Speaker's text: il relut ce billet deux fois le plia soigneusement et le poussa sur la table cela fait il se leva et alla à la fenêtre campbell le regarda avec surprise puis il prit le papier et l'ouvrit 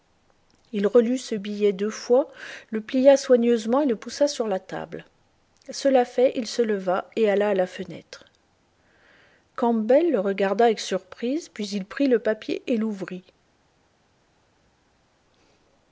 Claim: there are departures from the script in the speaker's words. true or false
false